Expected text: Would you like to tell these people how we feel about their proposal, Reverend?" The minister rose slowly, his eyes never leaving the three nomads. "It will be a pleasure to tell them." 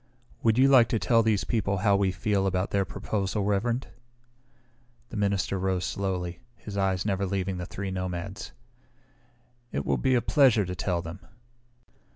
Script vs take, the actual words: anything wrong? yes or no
no